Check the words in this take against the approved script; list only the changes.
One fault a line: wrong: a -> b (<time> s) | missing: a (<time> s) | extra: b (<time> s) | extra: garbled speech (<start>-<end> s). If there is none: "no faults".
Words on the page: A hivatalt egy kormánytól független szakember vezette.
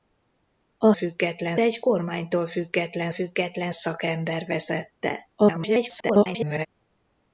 wrong: hivatalt -> független (0.9 s)
extra: független (3.1 s)
extra: garbled speech (5.4-6.7 s)